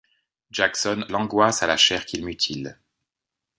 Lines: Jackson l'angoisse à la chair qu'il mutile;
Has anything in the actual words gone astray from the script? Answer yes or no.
no